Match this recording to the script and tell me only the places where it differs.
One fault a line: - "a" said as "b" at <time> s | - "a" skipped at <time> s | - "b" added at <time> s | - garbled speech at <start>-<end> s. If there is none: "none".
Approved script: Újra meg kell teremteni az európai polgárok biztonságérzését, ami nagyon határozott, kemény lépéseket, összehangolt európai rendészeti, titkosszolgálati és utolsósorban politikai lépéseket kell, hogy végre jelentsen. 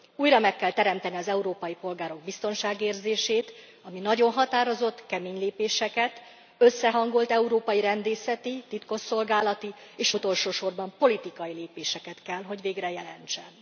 none